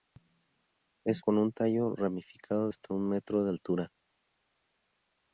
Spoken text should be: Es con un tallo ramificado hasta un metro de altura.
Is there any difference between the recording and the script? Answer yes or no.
no